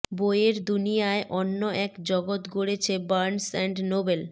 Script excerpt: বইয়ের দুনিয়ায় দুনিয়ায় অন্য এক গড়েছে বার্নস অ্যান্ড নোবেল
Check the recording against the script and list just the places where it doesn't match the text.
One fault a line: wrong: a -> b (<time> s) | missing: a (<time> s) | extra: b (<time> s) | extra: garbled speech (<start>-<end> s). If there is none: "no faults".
missing: দুনিয়ায় (1.2 s)
extra: জগৎ (2.1 s)